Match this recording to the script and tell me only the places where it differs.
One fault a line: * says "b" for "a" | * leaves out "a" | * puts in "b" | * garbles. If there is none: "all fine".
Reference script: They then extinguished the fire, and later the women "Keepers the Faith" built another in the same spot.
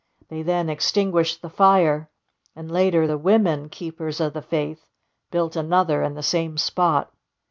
* puts in "of"